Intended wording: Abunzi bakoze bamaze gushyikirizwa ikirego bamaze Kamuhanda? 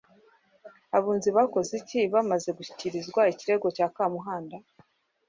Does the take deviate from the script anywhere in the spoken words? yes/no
yes